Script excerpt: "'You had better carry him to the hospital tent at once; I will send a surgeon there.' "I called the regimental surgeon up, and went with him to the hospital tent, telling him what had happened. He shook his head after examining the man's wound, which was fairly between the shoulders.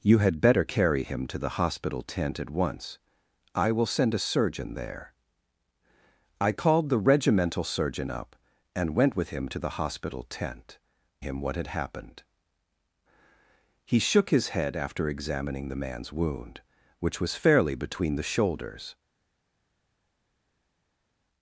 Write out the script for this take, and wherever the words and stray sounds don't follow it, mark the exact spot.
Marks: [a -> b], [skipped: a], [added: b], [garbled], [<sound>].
"'You had better carry him to the hospital tent at once; I will send a surgeon there.' "I called the regimental surgeon up, and went with him to the hospital tent, [skipped: telling] him what had happened. He shook his head after examining the man's wound, which was fairly between the shoulders.